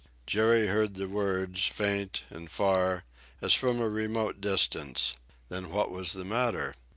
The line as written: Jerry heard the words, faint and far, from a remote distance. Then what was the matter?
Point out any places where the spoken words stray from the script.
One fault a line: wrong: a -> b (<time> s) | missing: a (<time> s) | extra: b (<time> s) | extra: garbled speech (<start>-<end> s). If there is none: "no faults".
extra: as (3.4 s)